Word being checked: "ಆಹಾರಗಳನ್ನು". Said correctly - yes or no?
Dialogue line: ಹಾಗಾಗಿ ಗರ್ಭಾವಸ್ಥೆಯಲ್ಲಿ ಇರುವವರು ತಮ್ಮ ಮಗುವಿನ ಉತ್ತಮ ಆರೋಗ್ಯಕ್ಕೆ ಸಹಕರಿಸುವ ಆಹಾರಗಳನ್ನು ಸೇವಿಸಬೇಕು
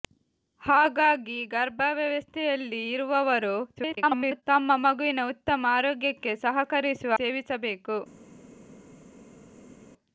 no